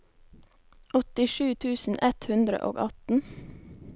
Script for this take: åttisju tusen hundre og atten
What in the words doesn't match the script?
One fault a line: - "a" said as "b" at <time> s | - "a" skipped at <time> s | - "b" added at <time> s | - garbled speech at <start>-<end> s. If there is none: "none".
- "ett" added at 2.1 s